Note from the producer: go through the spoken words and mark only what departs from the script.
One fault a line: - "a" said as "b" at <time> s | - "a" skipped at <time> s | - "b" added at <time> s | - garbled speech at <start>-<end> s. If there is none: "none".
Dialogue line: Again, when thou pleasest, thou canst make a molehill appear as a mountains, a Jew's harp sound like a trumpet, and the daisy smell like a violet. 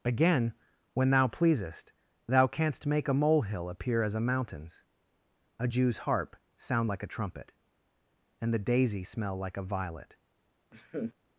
none